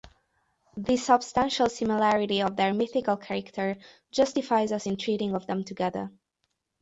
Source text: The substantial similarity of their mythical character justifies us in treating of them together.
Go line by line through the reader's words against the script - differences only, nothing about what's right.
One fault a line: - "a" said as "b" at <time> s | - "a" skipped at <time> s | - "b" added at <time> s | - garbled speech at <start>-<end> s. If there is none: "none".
none